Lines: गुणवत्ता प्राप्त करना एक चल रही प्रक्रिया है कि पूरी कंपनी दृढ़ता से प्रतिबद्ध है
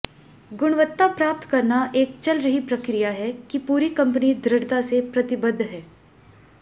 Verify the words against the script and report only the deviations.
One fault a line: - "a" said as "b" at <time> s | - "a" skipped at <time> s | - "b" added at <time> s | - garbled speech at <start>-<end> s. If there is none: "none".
none